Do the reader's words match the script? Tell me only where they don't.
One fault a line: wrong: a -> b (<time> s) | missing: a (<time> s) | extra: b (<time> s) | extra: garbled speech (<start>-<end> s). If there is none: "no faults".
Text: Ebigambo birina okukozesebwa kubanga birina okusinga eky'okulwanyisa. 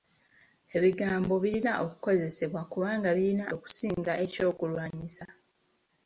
no faults